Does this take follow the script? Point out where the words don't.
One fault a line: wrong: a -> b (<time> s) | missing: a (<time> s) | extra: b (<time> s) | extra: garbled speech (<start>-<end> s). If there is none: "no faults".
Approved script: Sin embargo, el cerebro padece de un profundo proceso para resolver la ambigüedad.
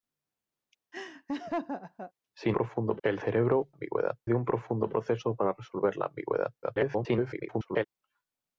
wrong: embargo -> profundo (2.5 s)
wrong: padece -> ambigüedad (3.7 s)
extra: garbled speech (6.6-7.9 s)